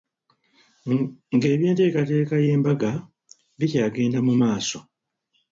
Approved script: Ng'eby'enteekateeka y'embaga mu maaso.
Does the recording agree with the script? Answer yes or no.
no